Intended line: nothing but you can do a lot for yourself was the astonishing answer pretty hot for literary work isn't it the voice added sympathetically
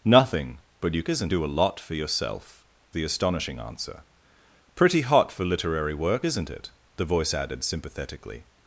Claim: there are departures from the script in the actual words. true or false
true